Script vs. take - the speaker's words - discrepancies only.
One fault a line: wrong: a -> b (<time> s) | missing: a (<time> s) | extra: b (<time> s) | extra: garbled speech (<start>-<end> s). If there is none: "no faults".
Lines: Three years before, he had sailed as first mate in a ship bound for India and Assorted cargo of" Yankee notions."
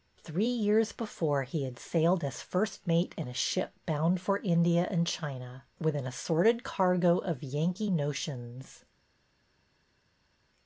extra: China with an (5.1 s)